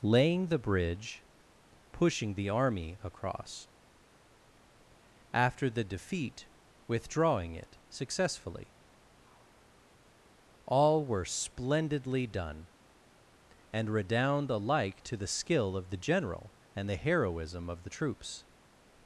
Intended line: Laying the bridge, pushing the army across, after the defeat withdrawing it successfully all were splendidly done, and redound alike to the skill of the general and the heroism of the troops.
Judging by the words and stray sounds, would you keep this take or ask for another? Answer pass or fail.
pass